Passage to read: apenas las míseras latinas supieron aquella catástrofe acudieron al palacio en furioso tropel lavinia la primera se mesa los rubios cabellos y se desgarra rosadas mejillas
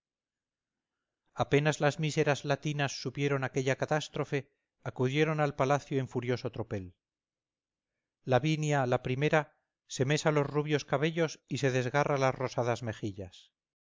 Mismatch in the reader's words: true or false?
true